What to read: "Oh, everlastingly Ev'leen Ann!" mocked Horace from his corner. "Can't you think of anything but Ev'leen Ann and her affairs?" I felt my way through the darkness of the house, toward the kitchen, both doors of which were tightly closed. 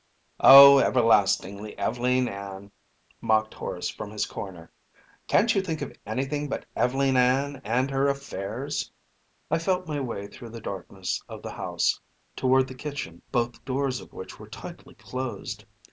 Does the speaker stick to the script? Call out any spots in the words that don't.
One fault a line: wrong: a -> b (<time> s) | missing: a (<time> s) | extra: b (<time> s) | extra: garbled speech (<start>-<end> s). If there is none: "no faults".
no faults